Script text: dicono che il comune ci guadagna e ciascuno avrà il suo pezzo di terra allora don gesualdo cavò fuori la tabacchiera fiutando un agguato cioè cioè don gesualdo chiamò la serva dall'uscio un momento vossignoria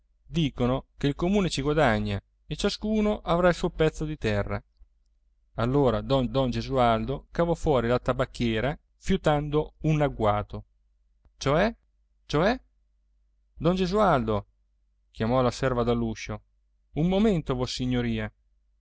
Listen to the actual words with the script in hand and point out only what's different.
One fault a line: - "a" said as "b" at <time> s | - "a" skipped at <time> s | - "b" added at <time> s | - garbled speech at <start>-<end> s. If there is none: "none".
- "don" added at 6.3 s